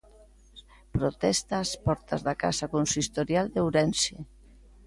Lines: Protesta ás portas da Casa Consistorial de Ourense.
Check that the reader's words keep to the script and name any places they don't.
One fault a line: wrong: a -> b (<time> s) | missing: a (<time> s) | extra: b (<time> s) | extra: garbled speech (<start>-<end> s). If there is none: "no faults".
no faults